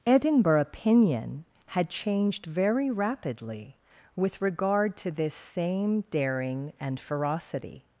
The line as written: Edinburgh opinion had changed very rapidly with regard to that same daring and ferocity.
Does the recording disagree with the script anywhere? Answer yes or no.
yes